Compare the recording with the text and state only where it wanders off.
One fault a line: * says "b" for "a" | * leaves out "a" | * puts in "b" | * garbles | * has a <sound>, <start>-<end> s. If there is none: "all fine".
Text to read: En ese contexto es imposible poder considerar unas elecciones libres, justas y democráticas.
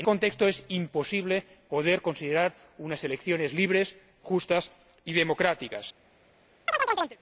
* leaves out "ese"
* has a chirp, 6.7-7.2 s